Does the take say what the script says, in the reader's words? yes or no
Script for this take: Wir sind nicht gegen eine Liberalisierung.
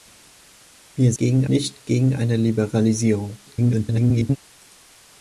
no